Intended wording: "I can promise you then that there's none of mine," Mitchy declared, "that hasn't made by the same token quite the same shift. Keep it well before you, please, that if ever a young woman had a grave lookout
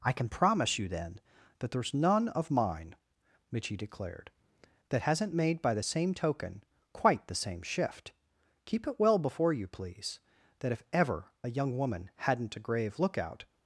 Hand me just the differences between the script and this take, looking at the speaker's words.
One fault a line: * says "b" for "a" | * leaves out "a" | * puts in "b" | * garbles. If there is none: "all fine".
* says "hadn't" for "had"